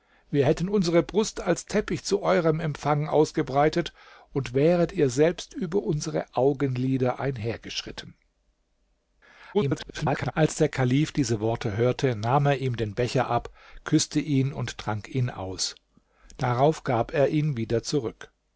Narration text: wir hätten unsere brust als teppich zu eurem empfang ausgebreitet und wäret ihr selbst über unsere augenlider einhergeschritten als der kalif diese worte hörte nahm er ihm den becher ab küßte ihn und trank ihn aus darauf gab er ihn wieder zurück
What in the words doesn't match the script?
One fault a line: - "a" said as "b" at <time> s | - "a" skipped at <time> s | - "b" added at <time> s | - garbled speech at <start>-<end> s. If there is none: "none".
- garbled speech at 9.5-10.3 s